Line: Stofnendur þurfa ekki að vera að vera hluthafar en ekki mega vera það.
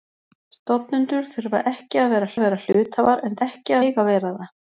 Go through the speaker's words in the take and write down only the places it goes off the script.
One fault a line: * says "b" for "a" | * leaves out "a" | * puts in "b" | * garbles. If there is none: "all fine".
all fine